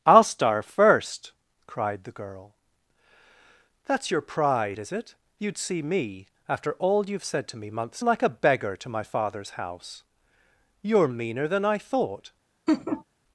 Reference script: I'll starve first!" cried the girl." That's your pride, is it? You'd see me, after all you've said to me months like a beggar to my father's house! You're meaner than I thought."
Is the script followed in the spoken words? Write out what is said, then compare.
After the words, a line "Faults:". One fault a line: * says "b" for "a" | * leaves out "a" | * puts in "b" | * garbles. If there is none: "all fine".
I'll starve first!" cried the girl." That's your pride, is it? You'd see me, after all you've said to me months like a beggar to my father's house! You're meaner than I thought."
Faults:
all fine